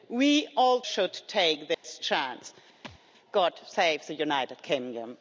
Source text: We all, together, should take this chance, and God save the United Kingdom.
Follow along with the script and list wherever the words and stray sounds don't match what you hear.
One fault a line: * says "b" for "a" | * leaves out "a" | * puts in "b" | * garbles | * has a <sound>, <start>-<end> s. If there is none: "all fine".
* leaves out "together"
* has a dropout, 1.7-1.8 s
* leaves out "and"
* has a thud, 2.8-3.0 s